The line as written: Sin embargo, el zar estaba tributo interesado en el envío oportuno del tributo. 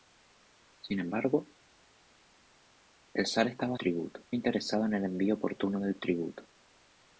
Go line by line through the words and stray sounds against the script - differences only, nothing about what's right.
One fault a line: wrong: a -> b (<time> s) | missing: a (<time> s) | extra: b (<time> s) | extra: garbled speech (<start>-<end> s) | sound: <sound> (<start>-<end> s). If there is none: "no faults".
no faults